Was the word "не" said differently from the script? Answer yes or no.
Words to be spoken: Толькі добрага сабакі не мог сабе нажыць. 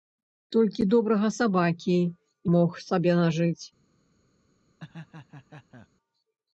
yes